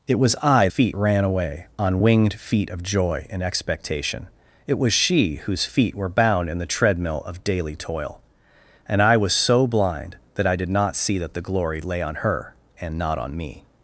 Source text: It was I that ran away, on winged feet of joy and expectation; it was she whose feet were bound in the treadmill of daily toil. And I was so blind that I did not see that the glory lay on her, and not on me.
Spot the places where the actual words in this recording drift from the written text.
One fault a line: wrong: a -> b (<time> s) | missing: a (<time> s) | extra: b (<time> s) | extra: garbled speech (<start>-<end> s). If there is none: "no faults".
wrong: that -> feet (0.7 s)